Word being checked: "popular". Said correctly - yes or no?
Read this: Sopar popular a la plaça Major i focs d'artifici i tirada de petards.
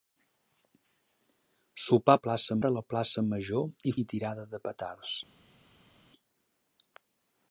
no